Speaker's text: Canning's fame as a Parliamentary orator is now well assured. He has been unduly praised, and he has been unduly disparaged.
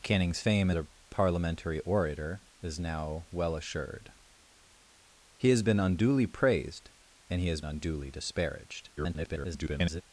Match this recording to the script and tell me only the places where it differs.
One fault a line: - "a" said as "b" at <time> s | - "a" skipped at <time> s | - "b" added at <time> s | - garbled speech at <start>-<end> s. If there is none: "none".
- "as" skipped at 0.7 s
- "been" skipped at 7.6 s
- garbled speech at 9.0-10.0 s